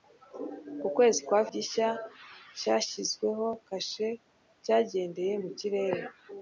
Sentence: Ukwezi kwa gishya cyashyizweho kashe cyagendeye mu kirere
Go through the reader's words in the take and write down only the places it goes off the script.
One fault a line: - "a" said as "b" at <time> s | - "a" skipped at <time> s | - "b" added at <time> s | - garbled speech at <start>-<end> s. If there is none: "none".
none